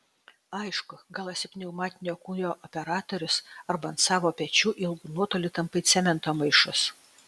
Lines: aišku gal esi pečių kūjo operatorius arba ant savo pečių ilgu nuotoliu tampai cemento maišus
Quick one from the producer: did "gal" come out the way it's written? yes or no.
yes